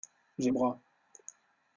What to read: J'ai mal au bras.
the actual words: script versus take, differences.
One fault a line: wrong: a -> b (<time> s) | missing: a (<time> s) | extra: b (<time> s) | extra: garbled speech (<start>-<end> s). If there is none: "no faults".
missing: mal (0.5 s)